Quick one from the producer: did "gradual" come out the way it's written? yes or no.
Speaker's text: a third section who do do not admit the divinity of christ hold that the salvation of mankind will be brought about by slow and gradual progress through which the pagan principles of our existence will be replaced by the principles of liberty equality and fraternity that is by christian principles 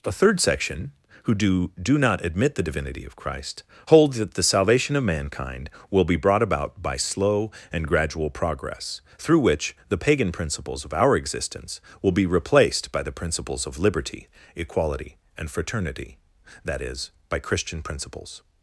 yes